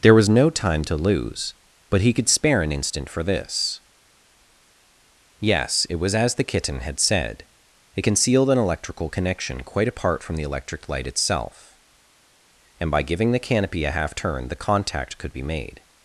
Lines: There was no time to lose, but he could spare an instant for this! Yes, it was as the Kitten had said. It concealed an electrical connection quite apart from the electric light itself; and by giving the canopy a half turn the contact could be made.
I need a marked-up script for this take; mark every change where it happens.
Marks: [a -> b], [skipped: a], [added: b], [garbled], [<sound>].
There was no time to lose, but he could spare an instant for this! Yes, it was as the Kitten had said. It concealed an electrical connection quite apart from the electric light itself; and by giving the canopy a half turn the contact could be made.